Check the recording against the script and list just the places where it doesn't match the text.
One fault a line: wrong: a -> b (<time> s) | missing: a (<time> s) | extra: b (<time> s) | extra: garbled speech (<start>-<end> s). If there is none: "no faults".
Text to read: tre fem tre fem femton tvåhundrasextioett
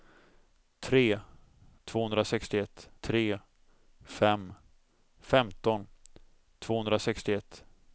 wrong: fem -> tvåhundrasextioett (1.8 s)